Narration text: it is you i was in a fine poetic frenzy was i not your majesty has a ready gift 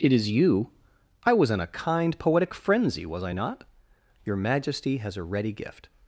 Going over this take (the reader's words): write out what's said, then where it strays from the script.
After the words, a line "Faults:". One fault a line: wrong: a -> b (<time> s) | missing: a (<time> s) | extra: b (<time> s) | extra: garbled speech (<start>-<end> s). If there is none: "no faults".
it is you i was in a kind poetic frenzy was i not your majesty has a ready gift
Faults:
wrong: fine -> kind (1.7 s)